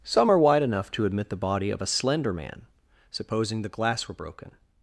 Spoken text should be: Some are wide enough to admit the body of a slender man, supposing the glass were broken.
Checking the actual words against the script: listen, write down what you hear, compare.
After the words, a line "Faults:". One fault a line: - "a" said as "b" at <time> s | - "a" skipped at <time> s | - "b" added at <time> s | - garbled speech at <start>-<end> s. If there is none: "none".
Some are wide enough to admit the body of a slender man, supposing the glass were broken.
Faults:
none